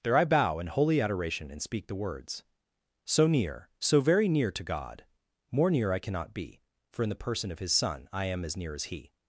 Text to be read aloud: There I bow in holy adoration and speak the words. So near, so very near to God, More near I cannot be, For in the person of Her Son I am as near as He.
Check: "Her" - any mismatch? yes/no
yes